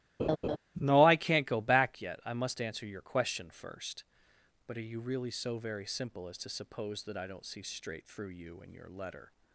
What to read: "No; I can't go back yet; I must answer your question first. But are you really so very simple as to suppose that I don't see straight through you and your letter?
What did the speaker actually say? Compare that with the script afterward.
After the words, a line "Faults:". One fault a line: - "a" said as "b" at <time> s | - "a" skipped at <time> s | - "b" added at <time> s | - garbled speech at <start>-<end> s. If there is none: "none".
"No; I can't go back yet; I must answer your question first. But are you really so very simple as to suppose that I don't see straight through you and your letter?
Faults:
none